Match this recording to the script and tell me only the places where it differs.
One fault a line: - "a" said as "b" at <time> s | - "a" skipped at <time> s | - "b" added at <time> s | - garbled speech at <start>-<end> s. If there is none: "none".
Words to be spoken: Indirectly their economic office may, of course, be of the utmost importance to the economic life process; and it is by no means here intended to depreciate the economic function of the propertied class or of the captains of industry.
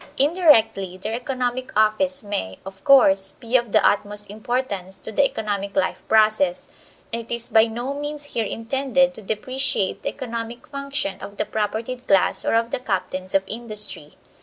none